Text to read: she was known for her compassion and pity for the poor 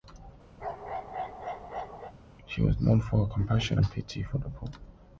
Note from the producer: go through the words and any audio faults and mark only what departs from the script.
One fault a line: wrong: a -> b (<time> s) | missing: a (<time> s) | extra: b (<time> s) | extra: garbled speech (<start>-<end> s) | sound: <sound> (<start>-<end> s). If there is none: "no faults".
sound: bark (0.6-2.1 s)